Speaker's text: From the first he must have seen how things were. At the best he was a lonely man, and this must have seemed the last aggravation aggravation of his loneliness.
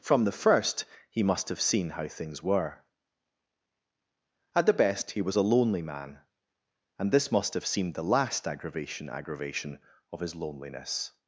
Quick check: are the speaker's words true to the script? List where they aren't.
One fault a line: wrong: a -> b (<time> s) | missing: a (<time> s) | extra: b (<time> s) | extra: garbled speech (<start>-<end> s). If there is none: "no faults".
no faults